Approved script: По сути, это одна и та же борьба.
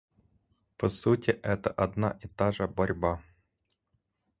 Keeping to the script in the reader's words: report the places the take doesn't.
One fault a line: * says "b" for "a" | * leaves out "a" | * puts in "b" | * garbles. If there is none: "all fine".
all fine